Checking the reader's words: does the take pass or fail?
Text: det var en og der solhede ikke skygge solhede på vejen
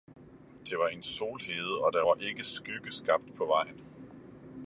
fail